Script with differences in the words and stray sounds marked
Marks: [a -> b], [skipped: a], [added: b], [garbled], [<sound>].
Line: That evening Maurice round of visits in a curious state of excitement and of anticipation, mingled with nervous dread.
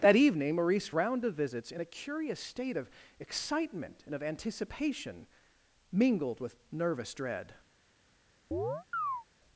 That evening Maurice round of visits in a curious state of excitement and of anticipation, mingled with nervous dread. [chirp]